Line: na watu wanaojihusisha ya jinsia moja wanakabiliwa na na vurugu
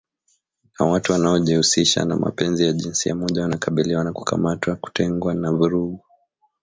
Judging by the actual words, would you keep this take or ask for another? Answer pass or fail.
fail